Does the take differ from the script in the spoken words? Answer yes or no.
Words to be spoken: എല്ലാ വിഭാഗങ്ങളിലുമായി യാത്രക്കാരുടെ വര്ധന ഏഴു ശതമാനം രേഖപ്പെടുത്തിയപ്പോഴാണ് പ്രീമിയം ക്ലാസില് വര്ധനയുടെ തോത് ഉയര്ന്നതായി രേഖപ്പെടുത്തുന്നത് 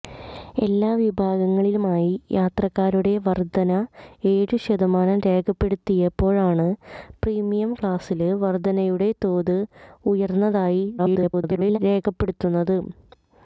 yes